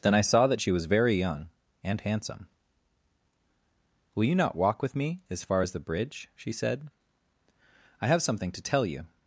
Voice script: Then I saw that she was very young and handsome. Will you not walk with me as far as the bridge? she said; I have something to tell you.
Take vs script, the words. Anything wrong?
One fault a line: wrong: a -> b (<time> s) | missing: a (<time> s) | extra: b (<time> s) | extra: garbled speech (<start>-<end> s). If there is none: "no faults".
no faults